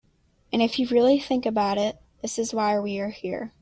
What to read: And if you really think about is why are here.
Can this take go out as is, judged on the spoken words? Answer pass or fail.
fail